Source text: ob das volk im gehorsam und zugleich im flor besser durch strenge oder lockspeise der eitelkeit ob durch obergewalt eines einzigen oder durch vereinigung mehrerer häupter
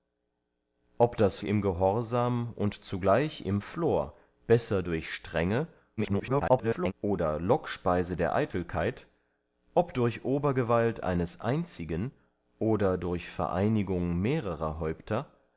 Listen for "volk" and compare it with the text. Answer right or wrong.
wrong